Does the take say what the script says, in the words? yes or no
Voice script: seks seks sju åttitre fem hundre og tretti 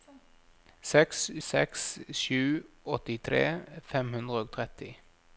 yes